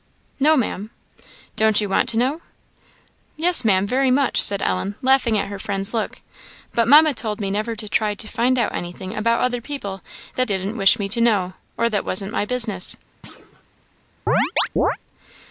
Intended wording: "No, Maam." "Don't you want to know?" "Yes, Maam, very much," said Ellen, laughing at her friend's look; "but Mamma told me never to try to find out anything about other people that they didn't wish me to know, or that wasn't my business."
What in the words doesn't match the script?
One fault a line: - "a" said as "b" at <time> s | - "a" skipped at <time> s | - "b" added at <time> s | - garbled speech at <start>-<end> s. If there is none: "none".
- "they" skipped at 10.5 s